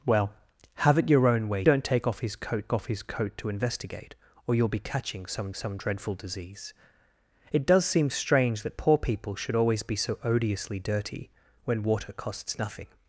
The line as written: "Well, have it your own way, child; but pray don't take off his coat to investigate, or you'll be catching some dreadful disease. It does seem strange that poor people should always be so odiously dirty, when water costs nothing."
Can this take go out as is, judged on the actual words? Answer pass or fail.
fail